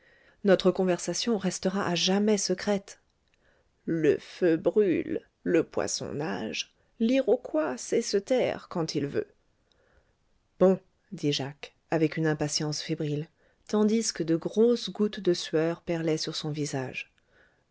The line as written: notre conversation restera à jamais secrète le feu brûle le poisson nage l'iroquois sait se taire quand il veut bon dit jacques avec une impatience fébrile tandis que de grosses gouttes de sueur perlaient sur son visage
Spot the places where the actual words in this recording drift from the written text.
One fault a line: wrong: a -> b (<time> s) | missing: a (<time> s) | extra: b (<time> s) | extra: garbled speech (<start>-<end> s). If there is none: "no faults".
no faults